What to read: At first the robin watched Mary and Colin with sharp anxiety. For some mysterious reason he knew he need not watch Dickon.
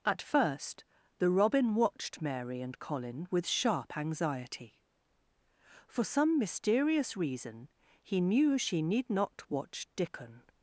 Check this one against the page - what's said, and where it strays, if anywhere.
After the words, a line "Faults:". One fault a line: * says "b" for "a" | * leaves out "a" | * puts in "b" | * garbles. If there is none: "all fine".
At first the robin watched Mary and Colin with sharp anxiety. For some mysterious reason he knew she need not watch Dickon.
Faults:
* says "she" for "he"